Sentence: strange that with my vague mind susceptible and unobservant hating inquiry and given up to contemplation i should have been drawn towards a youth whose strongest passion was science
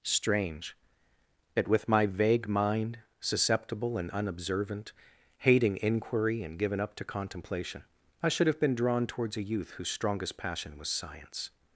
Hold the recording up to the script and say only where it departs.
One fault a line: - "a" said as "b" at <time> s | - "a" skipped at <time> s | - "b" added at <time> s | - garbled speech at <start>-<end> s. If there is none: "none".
none